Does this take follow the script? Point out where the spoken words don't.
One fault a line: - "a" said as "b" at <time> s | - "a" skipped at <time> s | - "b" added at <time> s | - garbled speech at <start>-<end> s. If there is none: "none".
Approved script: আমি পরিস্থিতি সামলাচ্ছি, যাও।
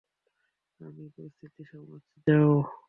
none